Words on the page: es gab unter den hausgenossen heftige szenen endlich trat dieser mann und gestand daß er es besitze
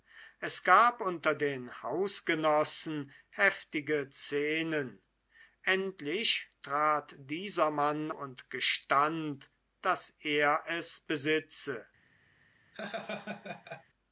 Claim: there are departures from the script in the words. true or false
false